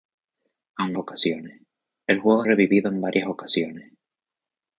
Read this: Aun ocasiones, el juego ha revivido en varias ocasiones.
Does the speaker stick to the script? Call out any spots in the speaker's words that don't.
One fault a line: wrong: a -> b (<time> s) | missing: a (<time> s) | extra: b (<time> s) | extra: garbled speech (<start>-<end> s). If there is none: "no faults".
no faults